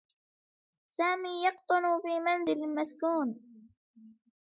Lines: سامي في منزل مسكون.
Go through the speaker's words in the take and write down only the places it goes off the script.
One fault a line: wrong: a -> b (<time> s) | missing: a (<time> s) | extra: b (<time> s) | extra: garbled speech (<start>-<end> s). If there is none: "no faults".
extra: يقطن (1.4 s)